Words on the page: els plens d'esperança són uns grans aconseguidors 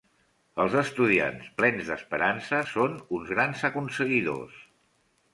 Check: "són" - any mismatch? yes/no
no